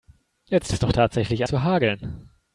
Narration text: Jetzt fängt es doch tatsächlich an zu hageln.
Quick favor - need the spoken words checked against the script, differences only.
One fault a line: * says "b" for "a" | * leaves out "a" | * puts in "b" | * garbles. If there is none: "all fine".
* leaves out "fängt"
* leaves out "an"